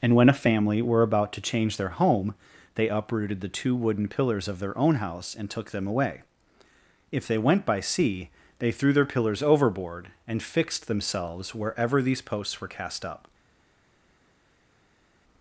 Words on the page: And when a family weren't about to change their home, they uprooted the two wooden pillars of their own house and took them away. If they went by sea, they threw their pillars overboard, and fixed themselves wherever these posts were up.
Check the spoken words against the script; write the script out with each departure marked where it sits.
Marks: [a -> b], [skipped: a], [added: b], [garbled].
And when a family [weren't -> were] about to change their home, they uprooted the two wooden pillars of their own house and took them away. If they went by sea, they threw their pillars overboard, and fixed themselves wherever these posts were [added: cast] up.